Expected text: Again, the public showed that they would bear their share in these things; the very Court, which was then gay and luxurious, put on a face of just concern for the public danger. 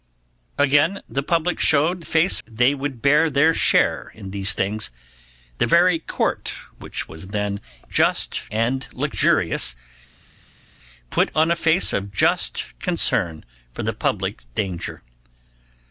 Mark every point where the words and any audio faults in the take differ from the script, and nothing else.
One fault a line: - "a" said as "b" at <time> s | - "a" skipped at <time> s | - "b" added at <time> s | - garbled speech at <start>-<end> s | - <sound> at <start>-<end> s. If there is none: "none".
- "that" said as "face" at 2.0 s
- "gay" said as "just" at 7.9 s